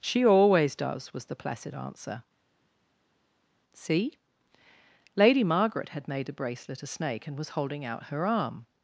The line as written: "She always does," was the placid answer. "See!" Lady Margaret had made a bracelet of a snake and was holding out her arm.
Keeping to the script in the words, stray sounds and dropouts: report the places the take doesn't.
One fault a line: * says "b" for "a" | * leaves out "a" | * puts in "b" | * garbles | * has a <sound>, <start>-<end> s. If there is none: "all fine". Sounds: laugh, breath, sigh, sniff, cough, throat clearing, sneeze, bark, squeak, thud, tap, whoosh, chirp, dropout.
* leaves out "of"